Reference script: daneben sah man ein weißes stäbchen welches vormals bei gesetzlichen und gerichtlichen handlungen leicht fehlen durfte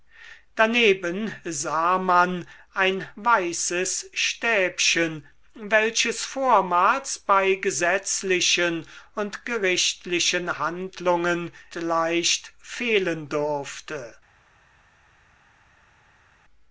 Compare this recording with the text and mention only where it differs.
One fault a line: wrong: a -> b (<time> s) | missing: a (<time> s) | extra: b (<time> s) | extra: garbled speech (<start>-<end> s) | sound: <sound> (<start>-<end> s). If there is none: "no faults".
no faults